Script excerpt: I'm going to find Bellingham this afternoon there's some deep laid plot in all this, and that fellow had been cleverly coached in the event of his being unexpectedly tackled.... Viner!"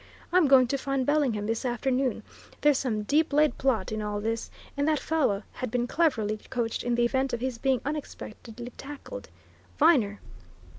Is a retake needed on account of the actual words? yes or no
no